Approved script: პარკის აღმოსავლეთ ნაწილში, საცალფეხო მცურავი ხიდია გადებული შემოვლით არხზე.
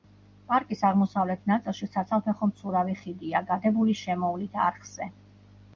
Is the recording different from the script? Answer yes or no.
no